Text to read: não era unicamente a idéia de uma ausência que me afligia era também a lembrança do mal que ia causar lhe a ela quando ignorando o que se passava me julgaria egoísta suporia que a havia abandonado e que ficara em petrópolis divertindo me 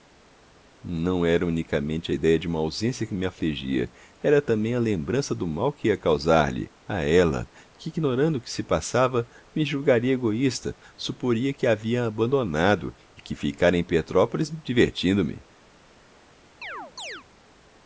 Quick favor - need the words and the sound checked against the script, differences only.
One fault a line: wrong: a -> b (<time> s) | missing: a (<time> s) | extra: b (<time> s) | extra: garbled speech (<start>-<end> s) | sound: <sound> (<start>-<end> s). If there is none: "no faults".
wrong: quando -> que (7.8 s)
sound: chirp (16.6-17.2 s)